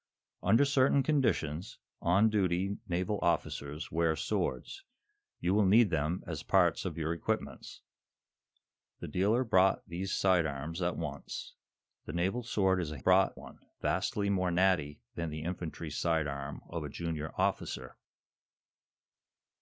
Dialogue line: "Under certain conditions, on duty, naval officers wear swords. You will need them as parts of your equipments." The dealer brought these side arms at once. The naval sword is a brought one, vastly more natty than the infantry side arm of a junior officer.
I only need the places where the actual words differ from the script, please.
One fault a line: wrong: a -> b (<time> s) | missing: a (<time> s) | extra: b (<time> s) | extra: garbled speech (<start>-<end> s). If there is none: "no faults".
no faults